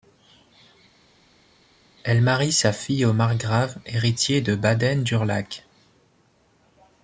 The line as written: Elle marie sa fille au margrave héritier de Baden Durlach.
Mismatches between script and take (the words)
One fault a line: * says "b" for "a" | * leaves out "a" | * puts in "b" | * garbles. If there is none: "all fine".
all fine